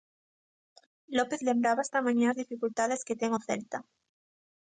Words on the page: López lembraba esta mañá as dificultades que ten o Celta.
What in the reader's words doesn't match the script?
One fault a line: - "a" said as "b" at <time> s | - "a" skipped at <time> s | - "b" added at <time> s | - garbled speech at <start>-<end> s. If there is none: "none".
none